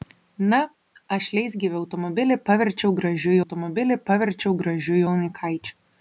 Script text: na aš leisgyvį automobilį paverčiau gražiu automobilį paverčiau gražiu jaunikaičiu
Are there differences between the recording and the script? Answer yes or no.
no